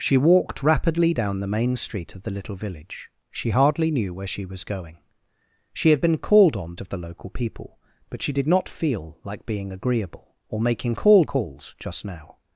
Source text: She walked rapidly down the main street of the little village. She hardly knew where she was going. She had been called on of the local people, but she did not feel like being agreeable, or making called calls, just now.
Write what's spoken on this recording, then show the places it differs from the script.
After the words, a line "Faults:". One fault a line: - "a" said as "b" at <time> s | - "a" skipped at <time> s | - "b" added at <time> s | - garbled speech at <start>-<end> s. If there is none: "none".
She walked rapidly down the main street of the little village. She hardly knew where she was going. She had been called on of the local people, but she did not feel like being agreeable, or making called calls, just now.
Faults:
none